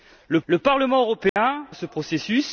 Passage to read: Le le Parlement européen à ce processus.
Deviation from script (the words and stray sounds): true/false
true